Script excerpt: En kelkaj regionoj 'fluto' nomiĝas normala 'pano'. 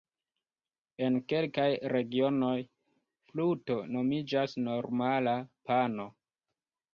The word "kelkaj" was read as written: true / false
true